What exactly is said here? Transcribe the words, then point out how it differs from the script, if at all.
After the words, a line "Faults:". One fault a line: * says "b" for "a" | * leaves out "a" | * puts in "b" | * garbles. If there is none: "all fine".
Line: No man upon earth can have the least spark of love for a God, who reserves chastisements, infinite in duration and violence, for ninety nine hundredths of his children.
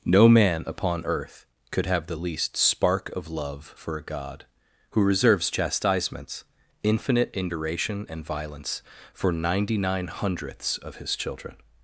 No man upon earth could have the least spark of love for a God, who reserves chastisements, infinite in duration and violence, for ninety nine hundredths of his children.
Faults:
* says "could" for "can"